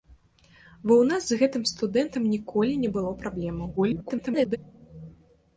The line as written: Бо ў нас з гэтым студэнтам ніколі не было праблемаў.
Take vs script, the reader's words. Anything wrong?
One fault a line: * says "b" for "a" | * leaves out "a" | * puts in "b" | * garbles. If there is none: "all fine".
* garbles